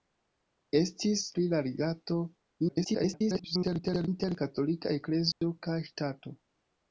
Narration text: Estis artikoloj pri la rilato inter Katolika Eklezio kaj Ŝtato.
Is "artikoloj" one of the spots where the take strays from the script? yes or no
yes